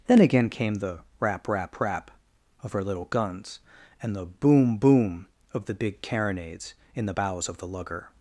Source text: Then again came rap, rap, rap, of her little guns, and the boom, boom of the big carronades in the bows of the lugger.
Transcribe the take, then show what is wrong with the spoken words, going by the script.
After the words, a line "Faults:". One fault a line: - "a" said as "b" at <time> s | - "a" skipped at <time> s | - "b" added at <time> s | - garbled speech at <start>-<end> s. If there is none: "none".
Then again came the rap, rap, rap, of her little guns, and the boom, boom of the big carronades in the bows of the lugger.
Faults:
- "the" added at 0.8 s